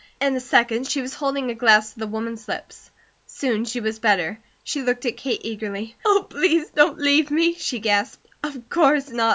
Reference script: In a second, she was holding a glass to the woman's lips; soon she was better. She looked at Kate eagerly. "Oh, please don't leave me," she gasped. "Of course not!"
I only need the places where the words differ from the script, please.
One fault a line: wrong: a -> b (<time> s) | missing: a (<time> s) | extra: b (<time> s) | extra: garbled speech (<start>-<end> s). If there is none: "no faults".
no faults